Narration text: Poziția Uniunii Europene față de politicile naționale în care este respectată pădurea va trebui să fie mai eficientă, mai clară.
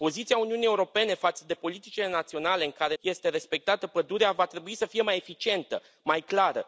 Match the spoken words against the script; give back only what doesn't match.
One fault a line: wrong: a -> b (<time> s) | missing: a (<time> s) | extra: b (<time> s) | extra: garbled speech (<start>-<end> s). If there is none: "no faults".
no faults